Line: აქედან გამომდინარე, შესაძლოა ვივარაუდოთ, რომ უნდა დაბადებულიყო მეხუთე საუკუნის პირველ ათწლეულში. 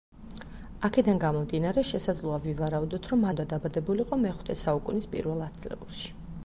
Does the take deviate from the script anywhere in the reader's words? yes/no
no